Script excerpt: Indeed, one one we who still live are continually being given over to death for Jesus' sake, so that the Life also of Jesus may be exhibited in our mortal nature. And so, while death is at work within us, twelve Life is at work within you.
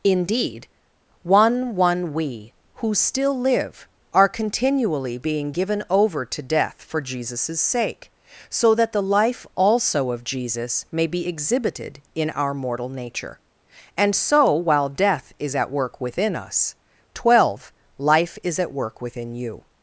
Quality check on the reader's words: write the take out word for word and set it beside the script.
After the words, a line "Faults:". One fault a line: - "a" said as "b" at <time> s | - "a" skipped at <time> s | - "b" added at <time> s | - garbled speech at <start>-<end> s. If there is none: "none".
Indeed, one one we who still live are continually being given over to death for Jesus' sake, so that the Life also of Jesus may be exhibited in our mortal nature. And so, while death is at work within us, twelve Life is at work within you.
Faults:
none